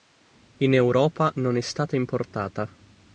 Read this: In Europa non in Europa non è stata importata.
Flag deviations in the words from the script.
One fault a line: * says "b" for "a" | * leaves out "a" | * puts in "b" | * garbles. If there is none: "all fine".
* leaves out "in Europa non"